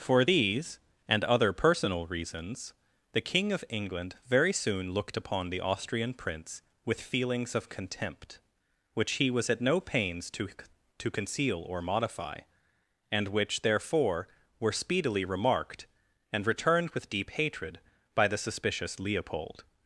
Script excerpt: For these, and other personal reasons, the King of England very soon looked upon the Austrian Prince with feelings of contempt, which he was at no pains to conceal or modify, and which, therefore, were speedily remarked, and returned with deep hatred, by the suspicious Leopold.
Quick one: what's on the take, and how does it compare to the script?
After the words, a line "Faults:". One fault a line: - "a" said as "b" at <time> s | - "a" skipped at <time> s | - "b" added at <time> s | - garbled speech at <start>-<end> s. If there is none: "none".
For these, and other personal reasons, the King of England very soon looked upon the Austrian Prince with feelings of contempt, which he was at no pains to to conceal or modify, and which, therefore, were speedily remarked, and returned with deep hatred, by the suspicious Leopold.
Faults:
- "to" added at 11.0 s